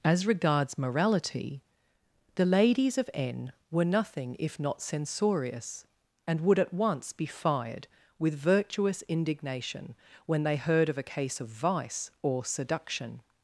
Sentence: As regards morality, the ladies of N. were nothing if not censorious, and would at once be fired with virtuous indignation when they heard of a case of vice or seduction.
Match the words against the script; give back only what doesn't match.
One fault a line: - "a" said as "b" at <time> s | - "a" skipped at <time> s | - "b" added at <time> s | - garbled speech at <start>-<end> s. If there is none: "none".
none